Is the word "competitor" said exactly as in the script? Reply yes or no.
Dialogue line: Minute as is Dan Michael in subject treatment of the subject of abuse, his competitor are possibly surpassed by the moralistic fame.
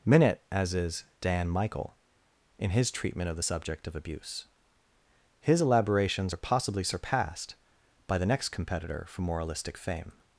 no